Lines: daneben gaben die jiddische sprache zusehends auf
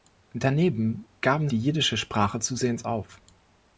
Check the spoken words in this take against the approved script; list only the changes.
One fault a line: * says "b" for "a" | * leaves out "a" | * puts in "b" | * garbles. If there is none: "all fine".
all fine